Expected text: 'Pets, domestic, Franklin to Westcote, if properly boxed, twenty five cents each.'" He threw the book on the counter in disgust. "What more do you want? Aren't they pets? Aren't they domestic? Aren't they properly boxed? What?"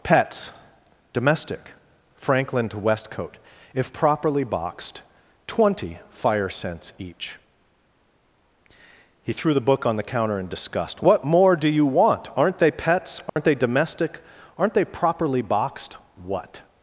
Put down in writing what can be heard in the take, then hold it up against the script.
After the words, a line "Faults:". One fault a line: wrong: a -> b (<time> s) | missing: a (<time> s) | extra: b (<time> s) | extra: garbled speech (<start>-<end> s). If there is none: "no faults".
'Pets, domestic, Franklin to Westcote, if properly boxed, twenty fire cents each.'" He threw the book on the counter in disgust. "What more do you want? Aren't they pets? Aren't they domestic? Aren't they properly boxed? What?"
Faults:
wrong: five -> fire (6.1 s)